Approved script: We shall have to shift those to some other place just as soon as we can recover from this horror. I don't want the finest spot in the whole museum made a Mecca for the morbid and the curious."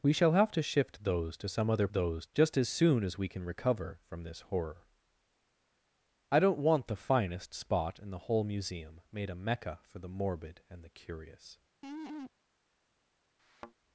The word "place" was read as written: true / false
false